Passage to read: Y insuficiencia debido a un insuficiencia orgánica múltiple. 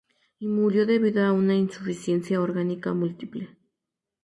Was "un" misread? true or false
true